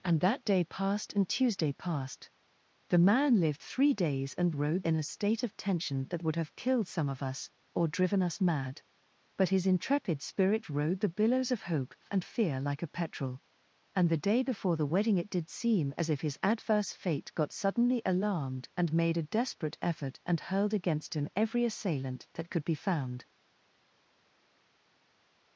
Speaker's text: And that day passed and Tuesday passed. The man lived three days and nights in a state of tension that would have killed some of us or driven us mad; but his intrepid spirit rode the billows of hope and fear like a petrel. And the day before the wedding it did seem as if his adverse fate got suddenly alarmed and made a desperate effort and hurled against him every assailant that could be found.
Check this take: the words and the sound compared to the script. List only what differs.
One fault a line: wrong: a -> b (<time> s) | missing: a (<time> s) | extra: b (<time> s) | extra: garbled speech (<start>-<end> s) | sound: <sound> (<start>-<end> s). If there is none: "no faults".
wrong: nights -> rode (4.5 s)